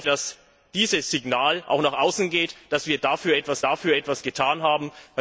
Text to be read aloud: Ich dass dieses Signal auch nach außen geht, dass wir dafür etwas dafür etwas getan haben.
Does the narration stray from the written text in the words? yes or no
no